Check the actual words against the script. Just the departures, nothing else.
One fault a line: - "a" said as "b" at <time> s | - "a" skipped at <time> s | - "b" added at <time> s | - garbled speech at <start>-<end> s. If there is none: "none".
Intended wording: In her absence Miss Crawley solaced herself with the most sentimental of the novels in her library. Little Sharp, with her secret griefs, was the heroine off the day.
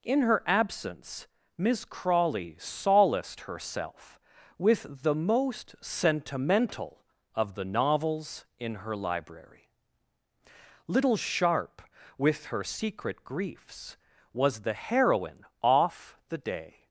none